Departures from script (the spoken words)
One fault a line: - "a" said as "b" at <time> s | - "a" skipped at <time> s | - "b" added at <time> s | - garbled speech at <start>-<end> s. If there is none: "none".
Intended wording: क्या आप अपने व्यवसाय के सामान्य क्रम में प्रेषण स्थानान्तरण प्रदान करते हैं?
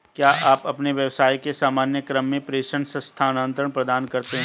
none